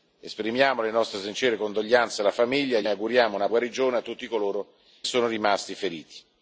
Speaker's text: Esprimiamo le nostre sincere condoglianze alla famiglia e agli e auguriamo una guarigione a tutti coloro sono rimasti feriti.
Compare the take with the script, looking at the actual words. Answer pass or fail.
pass